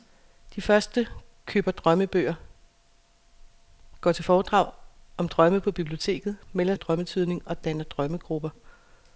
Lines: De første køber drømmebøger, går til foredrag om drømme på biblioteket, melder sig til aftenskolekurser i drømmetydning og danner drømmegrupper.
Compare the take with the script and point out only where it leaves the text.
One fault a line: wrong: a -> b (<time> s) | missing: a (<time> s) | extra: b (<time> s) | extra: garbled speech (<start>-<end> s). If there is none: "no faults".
missing: sig til aftenskolekurser (6.7 s)